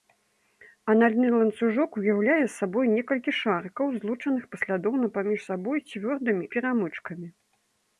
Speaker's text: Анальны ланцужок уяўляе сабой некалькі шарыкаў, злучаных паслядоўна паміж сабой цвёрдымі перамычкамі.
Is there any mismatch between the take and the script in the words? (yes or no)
no